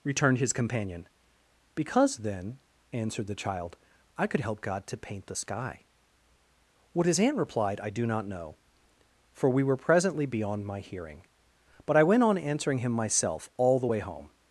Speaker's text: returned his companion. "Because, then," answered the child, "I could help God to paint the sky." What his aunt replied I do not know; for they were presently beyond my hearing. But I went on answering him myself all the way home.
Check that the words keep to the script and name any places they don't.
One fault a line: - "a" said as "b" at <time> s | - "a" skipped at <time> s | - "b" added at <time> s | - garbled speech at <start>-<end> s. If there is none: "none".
- "they" said as "we" at 9.5 s